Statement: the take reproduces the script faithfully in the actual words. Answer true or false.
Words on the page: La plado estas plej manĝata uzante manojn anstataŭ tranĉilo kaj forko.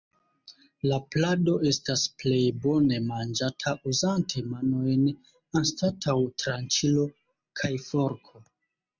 false